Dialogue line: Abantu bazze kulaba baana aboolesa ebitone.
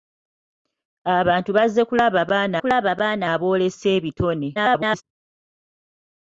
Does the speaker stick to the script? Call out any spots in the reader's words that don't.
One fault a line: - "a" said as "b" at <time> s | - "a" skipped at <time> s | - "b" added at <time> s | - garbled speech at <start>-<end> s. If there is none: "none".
- "kulaba baana" added at 2.6 s
- garbled speech at 4.5-5.0 s